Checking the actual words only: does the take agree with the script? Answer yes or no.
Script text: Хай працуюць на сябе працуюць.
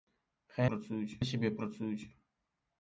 yes